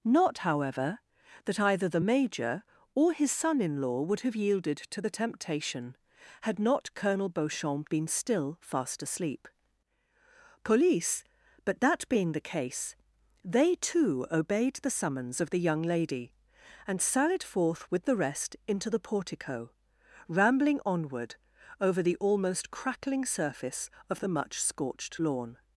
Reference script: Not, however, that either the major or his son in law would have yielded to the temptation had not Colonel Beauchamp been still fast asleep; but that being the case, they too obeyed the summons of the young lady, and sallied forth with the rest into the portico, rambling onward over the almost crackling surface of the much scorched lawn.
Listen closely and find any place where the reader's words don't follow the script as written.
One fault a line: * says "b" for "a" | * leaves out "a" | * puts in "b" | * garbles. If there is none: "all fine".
* puts in "police"